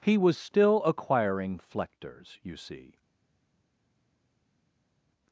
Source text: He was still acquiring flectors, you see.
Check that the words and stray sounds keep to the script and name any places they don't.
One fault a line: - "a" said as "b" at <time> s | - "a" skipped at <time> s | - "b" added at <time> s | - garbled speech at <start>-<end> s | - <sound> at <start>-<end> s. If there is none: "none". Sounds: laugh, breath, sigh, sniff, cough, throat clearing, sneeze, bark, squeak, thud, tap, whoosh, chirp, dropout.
none